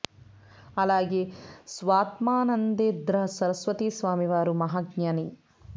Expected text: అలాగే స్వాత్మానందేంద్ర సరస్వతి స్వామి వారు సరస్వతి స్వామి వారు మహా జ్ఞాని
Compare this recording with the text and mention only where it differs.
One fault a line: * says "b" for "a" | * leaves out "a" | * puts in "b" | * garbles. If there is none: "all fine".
* leaves out "సరస్వతి స్వామి వారు"